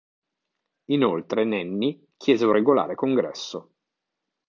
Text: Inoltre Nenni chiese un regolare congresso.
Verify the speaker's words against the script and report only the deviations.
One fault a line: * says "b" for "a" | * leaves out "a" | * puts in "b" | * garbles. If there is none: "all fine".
all fine